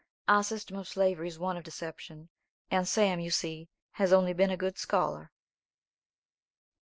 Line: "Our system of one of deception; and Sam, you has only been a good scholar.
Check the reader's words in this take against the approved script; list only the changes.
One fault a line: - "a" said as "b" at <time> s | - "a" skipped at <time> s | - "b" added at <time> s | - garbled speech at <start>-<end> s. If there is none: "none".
- "slavery is" added at 0.9 s
- "see" added at 3.3 s